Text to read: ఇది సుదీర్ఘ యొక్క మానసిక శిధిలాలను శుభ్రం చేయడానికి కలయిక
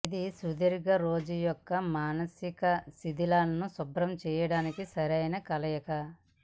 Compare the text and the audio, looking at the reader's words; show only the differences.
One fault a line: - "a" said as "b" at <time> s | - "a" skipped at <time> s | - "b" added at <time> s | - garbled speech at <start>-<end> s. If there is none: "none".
- "రోజు" added at 1.0 s
- "సరైన" added at 4.9 s